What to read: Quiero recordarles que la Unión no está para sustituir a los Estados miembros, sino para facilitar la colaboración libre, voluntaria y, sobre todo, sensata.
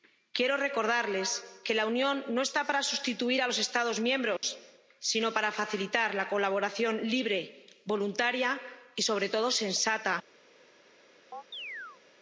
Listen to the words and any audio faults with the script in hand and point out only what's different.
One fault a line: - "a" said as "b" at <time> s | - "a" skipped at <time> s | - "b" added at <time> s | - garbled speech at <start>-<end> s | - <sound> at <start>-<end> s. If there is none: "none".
- dropout at 4.4-4.4 s
- chirp at 11.3-12.0 s